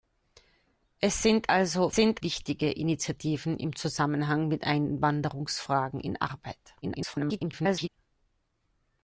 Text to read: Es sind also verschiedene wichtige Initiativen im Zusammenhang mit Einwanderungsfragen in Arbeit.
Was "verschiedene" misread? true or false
true